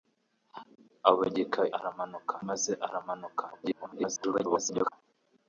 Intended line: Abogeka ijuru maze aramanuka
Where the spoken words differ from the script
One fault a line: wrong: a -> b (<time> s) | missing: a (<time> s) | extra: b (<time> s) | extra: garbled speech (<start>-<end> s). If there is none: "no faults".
wrong: ijuru -> aramanuka (1.8 s)
extra: garbled speech (3.5-4.9 s)